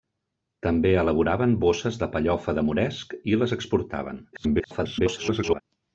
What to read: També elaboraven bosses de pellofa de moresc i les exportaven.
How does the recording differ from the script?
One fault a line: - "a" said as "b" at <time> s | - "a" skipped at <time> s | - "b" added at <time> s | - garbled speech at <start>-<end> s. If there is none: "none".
- garbled speech at 4.3-5.6 s